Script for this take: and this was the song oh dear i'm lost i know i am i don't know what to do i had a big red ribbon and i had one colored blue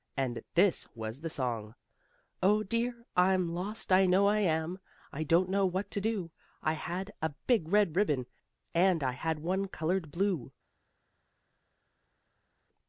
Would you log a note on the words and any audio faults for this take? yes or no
no